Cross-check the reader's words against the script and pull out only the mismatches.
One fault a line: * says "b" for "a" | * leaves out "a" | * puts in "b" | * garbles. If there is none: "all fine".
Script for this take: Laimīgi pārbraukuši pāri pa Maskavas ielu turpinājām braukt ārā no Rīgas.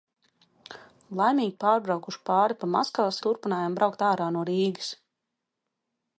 * leaves out "ielu"